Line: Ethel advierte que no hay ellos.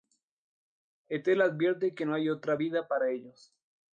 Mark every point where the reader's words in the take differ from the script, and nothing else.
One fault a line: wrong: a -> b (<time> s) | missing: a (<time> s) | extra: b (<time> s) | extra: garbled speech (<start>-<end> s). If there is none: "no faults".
extra: otra vida para (2.3 s)